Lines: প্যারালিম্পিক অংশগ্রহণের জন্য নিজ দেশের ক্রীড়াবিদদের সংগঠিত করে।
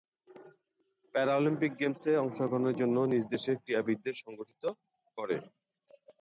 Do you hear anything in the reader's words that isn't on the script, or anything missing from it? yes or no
yes